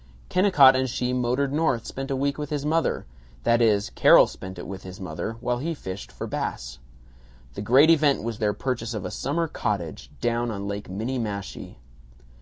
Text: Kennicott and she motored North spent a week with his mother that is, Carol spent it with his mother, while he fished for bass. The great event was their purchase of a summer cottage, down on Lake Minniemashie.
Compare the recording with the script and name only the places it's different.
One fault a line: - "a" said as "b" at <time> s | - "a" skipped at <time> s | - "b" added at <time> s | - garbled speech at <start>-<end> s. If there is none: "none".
none